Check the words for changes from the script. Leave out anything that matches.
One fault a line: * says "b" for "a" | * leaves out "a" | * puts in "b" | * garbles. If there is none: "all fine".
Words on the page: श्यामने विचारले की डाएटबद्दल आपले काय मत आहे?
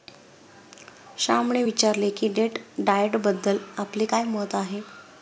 * puts in "डेट"